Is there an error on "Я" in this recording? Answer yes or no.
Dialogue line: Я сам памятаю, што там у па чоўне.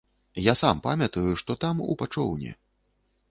no